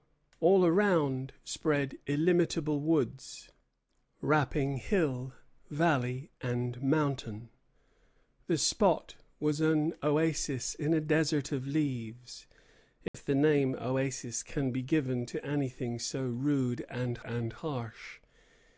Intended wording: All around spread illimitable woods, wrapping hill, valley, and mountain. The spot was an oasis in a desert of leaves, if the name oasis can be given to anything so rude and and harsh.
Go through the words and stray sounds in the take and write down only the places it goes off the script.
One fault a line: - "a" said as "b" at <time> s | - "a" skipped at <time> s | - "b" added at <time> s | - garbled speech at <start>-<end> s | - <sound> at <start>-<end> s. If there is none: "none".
- dropout at 13.1-13.1 s